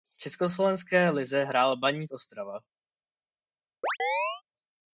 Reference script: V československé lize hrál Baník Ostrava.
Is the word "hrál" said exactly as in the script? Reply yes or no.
yes